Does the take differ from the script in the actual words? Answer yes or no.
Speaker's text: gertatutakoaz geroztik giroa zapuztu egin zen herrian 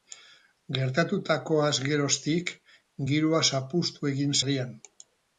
yes